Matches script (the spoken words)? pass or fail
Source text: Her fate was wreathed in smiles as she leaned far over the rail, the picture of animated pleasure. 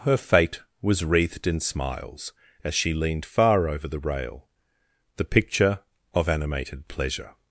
pass